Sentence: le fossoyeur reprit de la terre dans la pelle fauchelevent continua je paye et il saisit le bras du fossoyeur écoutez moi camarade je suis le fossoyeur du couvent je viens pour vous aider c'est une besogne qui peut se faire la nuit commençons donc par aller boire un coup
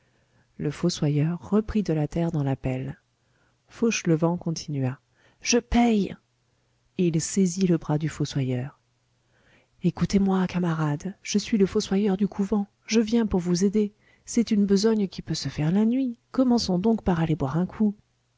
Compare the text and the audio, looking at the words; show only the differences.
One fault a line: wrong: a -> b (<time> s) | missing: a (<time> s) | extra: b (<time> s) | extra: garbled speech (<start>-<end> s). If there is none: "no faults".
no faults